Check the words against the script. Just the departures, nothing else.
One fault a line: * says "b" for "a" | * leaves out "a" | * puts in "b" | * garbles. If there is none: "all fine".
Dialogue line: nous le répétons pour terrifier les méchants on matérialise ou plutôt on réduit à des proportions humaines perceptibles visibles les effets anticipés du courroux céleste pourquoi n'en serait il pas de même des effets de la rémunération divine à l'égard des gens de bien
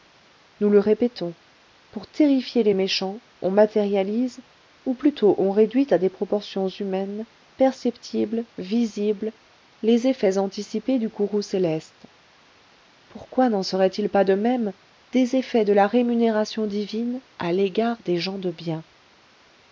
all fine